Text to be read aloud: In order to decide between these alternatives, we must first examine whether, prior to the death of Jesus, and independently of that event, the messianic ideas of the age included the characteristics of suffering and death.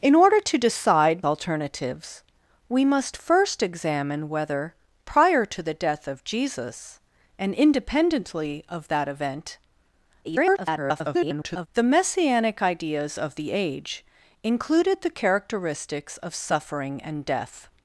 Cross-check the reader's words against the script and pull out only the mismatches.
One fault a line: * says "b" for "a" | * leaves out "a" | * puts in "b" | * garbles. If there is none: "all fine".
* leaves out "between these"
* garbles